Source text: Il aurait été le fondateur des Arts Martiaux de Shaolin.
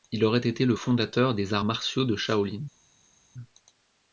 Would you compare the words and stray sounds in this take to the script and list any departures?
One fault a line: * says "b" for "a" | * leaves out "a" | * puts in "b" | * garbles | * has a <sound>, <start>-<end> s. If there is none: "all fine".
all fine